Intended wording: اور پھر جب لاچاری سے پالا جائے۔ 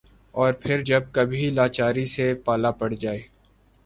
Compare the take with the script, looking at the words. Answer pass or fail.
fail